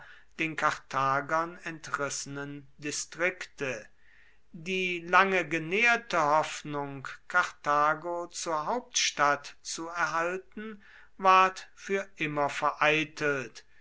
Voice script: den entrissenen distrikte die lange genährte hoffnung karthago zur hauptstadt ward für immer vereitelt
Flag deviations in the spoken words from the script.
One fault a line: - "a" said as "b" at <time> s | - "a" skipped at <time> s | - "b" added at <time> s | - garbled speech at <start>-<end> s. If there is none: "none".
- "karthagern" added at 0.5 s
- "zu erhalten" added at 9.6 s